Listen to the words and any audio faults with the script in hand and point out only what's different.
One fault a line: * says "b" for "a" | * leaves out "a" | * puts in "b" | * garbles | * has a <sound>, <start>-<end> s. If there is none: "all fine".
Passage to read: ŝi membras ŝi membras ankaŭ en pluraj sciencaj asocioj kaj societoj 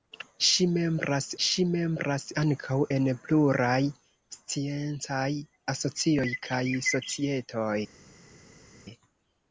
all fine